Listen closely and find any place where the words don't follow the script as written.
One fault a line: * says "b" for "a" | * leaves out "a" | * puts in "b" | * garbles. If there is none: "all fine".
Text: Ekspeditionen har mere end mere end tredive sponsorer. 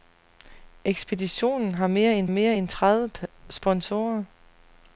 all fine